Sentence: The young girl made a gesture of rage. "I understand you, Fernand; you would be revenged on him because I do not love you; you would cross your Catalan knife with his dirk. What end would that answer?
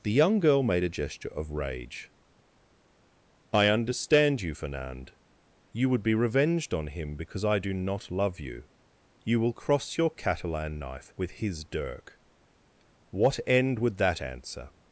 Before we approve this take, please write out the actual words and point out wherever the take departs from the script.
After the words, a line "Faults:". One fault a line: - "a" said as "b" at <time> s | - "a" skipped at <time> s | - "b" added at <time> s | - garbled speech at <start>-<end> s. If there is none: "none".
The young girl made a gesture of rage. "I understand you, Fernand; you would be revenged on him because I do not love you; you will cross your Catalan knife with his dirk. What end would that answer?
Faults:
- "would" said as "will" at 9.4 s